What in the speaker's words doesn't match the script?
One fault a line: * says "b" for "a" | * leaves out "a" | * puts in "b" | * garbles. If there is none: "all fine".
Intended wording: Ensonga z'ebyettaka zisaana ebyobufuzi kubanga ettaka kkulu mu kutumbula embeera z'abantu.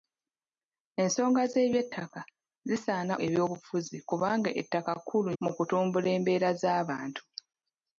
all fine